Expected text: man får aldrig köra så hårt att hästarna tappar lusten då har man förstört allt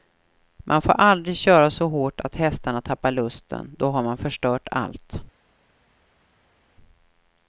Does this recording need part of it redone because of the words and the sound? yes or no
no